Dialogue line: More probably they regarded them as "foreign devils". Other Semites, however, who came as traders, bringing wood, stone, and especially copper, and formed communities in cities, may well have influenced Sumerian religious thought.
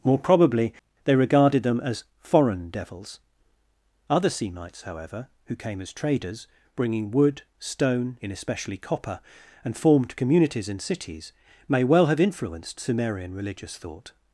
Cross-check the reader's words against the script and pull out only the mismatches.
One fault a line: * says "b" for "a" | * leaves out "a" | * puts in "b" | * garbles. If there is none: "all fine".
* says "in" for "and"